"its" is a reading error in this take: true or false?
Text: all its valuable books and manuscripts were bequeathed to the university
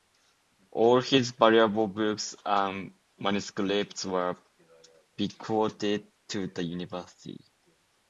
true